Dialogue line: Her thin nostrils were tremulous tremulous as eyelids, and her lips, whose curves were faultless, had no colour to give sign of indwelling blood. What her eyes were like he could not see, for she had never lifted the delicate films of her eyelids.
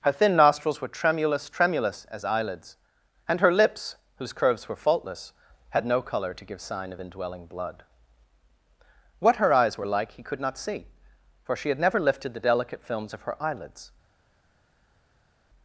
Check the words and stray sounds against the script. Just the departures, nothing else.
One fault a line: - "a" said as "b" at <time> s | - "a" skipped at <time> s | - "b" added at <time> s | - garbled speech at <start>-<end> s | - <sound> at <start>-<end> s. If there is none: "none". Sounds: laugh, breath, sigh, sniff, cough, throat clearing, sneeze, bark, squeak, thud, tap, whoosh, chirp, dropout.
none